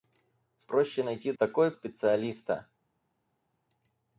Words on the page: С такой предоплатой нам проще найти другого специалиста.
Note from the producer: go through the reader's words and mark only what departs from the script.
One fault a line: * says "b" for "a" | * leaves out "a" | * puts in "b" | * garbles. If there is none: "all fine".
* leaves out "такой предоплатой нам"
* says "такой" for "другого"